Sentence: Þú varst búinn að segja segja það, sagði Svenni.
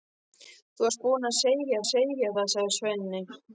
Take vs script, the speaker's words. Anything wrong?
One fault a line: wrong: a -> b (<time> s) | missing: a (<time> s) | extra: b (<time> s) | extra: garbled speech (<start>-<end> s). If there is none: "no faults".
no faults